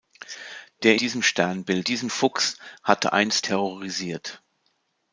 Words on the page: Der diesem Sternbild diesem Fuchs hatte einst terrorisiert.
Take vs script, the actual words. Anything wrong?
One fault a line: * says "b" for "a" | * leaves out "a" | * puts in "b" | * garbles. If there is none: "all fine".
all fine